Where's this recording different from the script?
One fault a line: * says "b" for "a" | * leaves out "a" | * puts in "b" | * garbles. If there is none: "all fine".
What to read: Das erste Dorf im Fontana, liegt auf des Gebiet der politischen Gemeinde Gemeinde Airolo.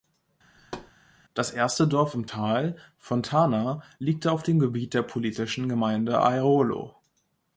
* puts in "Tal"
* says "dem" for "des"
* leaves out "Gemeinde"